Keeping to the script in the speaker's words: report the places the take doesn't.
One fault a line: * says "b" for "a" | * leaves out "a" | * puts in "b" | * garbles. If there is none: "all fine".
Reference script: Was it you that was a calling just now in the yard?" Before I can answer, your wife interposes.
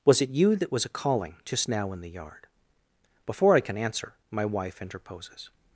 * says "my" for "your"